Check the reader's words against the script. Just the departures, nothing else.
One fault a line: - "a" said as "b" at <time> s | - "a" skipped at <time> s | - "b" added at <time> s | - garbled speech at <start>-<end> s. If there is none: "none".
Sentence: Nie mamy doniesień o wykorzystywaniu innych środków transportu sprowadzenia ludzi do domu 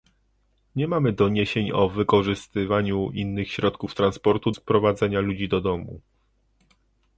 none